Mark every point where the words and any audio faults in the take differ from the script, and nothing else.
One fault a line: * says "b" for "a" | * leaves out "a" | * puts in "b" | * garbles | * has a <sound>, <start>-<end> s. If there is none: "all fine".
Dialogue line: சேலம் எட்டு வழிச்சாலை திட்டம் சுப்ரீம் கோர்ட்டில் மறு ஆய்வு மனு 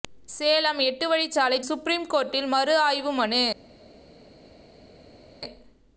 * leaves out "திட்டம்"